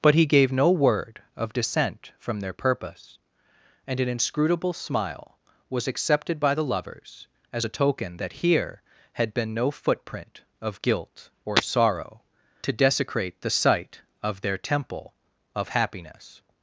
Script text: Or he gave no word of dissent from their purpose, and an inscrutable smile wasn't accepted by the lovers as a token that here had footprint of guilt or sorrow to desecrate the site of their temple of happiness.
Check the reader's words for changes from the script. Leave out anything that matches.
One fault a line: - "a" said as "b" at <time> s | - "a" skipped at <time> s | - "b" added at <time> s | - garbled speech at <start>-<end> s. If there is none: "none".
- "Or" said as "But" at 0.0 s
- "wasn't" said as "was" at 5.7 s
- "been no" added at 9.3 s